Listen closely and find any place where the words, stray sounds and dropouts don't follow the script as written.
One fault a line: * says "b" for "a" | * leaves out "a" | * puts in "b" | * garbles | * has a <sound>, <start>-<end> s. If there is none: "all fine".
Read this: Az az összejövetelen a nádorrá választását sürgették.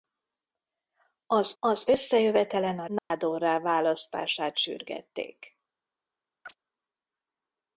* has a dropout, 3.0-3.1 s
* has a chirp, 6.4-6.6 s